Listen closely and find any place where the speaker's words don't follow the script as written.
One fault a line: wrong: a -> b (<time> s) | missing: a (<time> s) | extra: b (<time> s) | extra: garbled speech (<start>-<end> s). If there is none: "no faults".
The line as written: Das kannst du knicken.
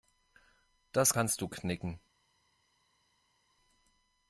no faults